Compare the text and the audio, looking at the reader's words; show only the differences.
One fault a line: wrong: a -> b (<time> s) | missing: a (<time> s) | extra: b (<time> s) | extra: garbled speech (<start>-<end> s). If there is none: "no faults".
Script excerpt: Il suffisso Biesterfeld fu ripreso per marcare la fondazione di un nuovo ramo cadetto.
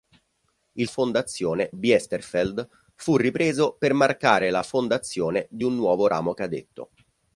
wrong: suffisso -> fondazione (0.9 s)